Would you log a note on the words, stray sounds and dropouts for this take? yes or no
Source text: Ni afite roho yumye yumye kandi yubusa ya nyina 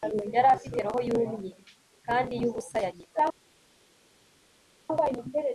yes